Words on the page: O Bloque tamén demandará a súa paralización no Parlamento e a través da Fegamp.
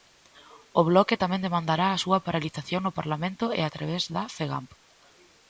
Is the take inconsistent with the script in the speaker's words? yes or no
no